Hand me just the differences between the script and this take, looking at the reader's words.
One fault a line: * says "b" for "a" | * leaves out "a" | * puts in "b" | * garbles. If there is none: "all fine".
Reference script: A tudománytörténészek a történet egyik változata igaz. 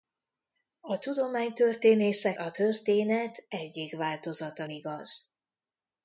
all fine